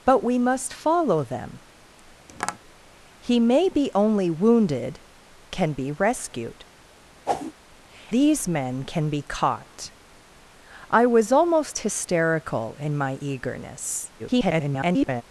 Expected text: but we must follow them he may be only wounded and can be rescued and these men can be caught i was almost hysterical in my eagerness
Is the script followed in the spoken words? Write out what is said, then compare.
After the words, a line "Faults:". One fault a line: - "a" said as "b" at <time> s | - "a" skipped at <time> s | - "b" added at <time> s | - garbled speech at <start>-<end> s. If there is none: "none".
but we must follow them he may be only wounded can be rescued these men can be caught i was almost hysterical in my eagerness [garbled]
Faults:
- "and" skipped at 5.0 s
- "and" skipped at 6.6 s
- garbled speech at 14.2-15.2 s